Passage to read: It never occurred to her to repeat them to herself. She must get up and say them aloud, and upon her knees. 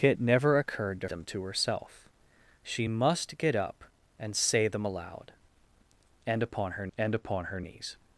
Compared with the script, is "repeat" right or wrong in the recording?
wrong